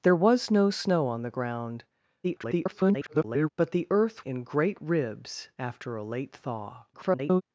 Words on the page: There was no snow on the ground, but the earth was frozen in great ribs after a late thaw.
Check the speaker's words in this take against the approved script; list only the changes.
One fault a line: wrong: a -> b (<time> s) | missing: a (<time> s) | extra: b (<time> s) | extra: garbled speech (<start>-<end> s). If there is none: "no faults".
extra: garbled speech (2.2-3.5 s)
missing: was frozen (4.3 s)
extra: garbled speech (6.9-7.4 s)